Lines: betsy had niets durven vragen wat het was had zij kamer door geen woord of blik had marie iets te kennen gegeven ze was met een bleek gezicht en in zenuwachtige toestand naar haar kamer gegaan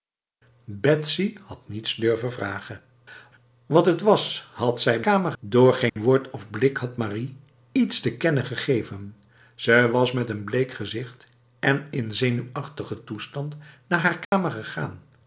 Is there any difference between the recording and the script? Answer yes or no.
no